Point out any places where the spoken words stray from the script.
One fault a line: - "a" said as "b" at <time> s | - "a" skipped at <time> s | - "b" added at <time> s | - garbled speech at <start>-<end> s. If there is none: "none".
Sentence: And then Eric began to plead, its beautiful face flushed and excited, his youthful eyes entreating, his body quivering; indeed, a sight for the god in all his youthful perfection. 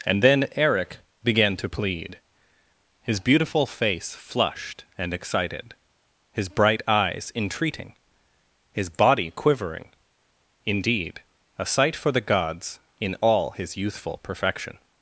- "its" said as "his" at 3.0 s
- "youthful" said as "bright" at 6.5 s
- "god" said as "gods" at 12.2 s